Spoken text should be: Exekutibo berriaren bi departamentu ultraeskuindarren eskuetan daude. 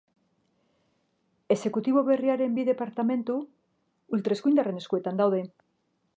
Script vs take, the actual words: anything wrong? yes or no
no